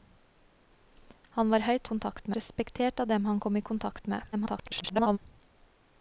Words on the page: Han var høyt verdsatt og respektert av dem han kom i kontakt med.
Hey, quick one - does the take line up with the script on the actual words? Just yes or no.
no